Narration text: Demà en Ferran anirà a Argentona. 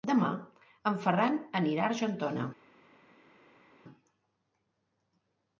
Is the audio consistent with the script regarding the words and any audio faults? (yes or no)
yes